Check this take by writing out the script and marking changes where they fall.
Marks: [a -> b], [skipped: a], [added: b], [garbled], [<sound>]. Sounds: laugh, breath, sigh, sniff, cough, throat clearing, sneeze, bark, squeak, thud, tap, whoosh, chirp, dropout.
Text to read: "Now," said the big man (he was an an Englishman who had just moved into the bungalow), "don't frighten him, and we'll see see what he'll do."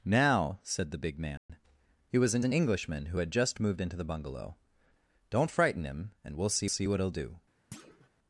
"Now," said the big man [dropout] (he was an an Englishman who had just moved into the bungalow), "don't frighten him, and we'll see see what he'll do." [thud]